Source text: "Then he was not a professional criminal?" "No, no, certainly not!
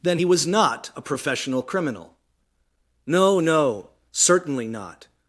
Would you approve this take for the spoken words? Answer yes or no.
yes